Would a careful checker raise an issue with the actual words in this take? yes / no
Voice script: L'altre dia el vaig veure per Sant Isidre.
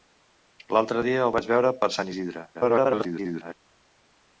yes